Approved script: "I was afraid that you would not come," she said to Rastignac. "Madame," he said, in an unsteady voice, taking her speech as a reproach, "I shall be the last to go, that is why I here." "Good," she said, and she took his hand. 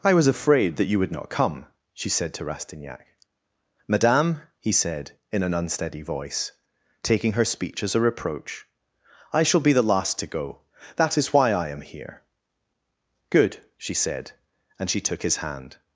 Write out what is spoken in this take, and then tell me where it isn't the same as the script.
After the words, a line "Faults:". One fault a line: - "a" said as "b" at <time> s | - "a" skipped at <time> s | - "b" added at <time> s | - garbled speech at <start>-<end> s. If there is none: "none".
"I was afraid that you would not come," she said to Rastignac. "Madame," he said, in an unsteady voice, taking her speech as a reproach, "I shall be the last to go, that is why I am here." "Good," she said, and she took his hand.
Faults:
- "am" added at 11.7 s